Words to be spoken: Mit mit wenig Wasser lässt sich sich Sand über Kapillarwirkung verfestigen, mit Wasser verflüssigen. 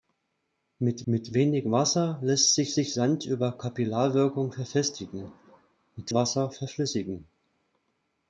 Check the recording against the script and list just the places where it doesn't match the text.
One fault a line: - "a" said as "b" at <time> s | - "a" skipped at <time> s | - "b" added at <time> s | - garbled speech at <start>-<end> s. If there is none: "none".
none